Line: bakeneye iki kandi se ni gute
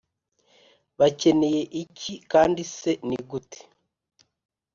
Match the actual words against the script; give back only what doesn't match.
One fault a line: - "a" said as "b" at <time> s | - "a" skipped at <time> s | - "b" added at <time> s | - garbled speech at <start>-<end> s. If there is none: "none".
none